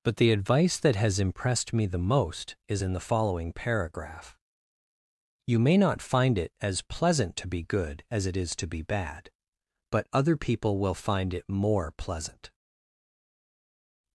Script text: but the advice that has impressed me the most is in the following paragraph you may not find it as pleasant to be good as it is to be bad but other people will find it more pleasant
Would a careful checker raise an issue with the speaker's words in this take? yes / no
no